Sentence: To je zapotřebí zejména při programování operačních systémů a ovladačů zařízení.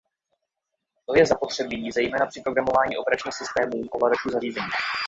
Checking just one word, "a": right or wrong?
wrong